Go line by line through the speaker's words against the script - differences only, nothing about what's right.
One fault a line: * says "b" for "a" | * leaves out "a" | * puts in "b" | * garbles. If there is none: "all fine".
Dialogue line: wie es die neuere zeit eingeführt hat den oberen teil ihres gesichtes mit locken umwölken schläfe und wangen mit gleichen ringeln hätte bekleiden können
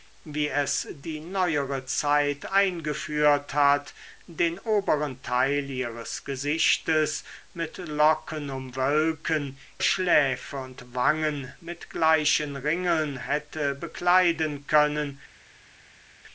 all fine